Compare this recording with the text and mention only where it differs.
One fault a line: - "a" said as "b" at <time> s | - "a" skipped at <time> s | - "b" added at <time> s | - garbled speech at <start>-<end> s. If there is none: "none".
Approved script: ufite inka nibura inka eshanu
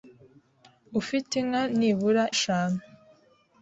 - "inka" skipped at 2.2 s